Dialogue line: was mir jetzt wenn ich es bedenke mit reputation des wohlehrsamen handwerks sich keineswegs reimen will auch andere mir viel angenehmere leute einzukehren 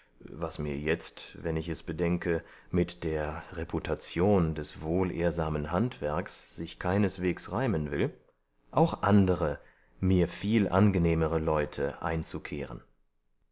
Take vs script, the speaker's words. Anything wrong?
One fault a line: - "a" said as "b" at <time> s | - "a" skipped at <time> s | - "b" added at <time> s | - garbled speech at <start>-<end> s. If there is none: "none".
- "der" added at 3.0 s